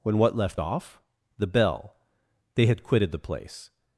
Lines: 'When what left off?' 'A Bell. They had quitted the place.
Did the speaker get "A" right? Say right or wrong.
wrong